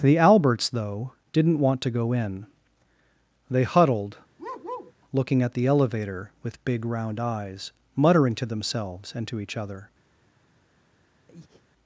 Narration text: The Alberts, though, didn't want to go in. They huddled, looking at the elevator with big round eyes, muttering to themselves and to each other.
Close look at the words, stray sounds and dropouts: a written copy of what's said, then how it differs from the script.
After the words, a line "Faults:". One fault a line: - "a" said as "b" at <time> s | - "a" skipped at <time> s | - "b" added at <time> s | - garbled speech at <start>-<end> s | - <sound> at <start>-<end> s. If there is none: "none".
The Alberts, though, didn't want to go in. They huddled, looking at the elevator with big round eyes, muttering to themselves and to each other.
Faults:
- bark at 4.4-4.9 s
- breath at 11.3-11.6 s